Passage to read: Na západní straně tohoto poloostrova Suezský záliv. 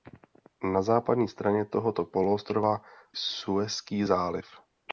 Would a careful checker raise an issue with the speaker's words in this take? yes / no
no